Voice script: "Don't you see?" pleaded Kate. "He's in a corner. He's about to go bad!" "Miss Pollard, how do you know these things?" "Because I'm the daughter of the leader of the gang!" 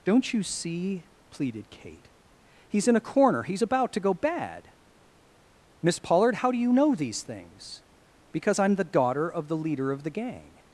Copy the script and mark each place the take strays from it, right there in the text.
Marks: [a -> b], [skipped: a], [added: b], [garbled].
"Don't you see?" pleaded Kate. "He's in a corner. He's about to go bad!" "Miss Pollard, how do you know these things?" "Because I'm the daughter of the leader of the gang!"